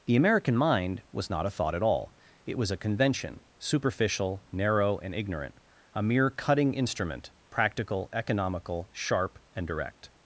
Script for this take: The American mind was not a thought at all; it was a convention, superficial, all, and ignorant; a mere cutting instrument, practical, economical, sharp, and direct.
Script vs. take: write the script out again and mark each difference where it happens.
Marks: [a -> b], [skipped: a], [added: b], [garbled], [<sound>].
The American mind was not a thought at all; it was a convention, superficial, [all, -> narrow] and ignorant; a mere cutting instrument, practical, economical, sharp, and direct.